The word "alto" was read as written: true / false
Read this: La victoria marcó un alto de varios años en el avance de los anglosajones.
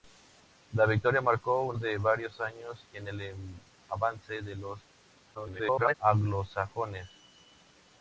false